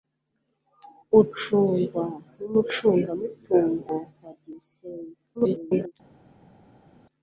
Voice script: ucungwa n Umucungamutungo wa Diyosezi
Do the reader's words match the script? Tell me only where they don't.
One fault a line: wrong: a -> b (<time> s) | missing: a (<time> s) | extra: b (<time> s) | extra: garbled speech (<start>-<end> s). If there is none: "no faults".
extra: garbled speech (5.3-5.9 s)